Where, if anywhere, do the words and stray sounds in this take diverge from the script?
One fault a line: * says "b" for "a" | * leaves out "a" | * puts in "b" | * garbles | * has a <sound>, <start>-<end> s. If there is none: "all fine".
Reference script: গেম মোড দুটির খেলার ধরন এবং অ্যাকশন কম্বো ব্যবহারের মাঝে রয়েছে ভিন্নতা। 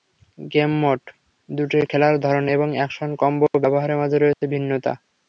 * has a dropout, 4.3-4.4 s